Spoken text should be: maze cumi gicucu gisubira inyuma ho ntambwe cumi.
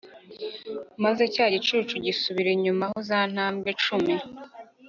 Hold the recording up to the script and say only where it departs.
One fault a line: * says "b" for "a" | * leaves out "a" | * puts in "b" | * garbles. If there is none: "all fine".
* says "cya" for "cumi"
* puts in "za"